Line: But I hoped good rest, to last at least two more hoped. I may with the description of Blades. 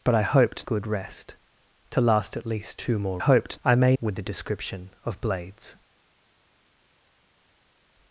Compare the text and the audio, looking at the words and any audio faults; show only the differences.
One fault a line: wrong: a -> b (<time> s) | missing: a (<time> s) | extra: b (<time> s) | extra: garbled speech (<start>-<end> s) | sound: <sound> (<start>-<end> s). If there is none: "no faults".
no faults